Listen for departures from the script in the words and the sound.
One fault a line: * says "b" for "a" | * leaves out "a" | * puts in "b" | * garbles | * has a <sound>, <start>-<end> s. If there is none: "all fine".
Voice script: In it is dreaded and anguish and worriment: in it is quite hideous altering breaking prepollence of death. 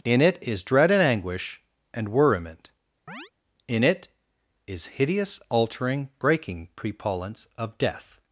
* says "dread" for "dreaded"
* has a chirp, 3.1-3.3 s
* leaves out "quite"